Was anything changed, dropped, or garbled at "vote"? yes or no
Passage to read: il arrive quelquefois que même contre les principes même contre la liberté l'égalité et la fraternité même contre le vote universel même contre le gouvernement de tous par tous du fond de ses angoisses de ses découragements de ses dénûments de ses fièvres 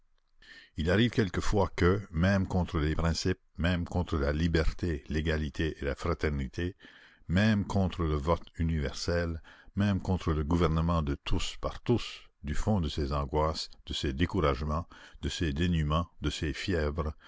no